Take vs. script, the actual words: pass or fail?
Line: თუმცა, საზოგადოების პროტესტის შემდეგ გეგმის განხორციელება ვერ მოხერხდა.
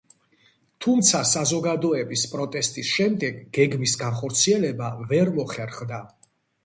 pass